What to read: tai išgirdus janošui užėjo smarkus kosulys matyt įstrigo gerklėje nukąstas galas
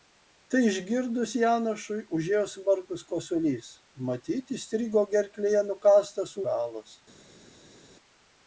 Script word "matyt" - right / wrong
right